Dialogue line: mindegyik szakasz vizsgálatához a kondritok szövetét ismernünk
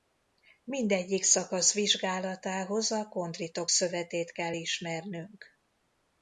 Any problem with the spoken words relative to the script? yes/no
yes